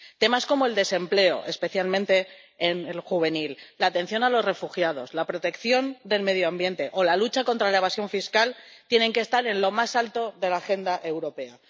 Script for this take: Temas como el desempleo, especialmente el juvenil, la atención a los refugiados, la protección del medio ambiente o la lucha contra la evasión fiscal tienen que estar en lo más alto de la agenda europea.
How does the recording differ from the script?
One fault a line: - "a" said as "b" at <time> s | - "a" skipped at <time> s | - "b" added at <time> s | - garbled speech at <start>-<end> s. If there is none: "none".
none